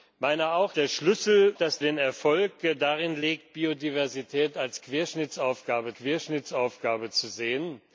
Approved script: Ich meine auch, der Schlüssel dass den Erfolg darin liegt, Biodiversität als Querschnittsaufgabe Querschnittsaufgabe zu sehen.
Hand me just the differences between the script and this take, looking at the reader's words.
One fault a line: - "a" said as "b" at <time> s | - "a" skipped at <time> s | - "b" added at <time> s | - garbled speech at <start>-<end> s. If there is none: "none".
none